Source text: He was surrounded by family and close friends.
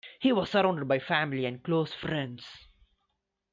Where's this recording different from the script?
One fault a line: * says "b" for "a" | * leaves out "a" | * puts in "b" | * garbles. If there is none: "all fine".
all fine